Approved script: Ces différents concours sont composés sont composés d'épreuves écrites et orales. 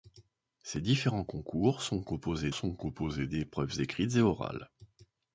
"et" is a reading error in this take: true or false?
false